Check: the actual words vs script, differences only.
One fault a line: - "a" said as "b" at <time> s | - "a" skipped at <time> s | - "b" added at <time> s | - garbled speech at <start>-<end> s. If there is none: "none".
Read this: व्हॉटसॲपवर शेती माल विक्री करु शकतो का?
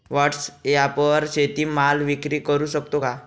none